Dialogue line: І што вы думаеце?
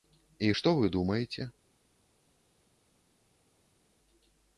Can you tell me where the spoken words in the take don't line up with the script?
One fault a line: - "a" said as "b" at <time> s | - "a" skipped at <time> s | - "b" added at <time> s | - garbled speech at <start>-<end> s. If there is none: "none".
none